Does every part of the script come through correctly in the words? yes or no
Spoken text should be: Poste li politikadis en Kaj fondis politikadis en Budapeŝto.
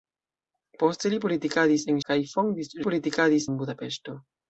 yes